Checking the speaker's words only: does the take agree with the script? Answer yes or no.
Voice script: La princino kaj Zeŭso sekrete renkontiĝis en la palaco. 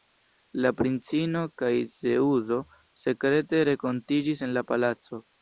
yes